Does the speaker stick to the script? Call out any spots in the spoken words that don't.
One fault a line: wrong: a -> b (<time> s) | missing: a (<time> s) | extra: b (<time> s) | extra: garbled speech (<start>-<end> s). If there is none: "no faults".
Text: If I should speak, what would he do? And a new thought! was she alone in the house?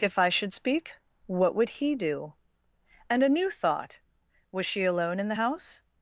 no faults